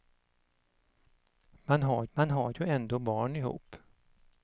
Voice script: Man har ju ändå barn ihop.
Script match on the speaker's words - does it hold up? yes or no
no